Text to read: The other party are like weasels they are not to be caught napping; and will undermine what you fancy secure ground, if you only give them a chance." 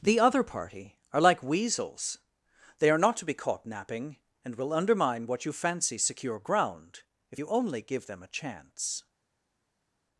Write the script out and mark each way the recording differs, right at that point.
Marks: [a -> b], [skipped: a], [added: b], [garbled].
The other party are like weasels they are not to be caught napping; and will undermine what you fancy secure ground, if you only give them a chance."